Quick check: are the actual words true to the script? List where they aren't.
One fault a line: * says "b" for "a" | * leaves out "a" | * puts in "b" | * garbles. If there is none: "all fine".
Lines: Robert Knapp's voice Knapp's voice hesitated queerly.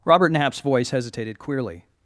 * leaves out "Knapp's voice"